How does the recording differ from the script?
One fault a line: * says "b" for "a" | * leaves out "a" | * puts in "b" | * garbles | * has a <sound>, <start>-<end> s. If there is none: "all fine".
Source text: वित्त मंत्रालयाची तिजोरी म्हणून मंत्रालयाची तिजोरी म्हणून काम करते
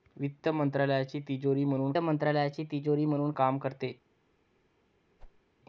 * has a whoosh, 5.2-5.4 s